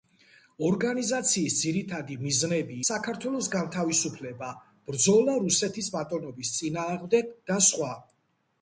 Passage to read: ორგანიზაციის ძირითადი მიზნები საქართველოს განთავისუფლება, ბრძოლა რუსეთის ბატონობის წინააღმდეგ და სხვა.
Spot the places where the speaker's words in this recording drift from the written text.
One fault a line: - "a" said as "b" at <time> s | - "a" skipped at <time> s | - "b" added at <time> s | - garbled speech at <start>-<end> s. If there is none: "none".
none